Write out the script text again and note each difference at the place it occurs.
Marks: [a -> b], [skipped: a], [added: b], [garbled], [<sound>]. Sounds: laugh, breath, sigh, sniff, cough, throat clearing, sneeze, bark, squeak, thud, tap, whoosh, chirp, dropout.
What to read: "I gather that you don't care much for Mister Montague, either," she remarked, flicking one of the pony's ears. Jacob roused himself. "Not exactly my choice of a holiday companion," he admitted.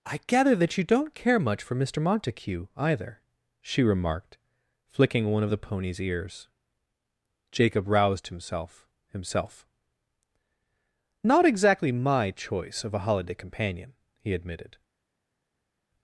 "I gather that you don't care much for Mister Montague, either," she remarked, flicking one of the pony's ears. Jacob roused himself. [added: himself] "Not exactly my choice of a holiday companion," he admitted.